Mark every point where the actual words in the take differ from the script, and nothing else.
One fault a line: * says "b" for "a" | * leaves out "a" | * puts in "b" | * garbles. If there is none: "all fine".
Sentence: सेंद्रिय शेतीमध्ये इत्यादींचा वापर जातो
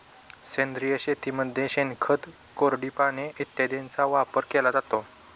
* puts in "शेणखत कोरडी पाने"
* puts in "केला"